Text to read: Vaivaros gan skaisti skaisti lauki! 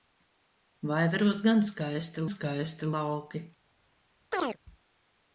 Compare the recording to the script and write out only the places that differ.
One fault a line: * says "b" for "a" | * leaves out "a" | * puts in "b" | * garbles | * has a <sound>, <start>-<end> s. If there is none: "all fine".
* has a chirp, 4.3-4.6 s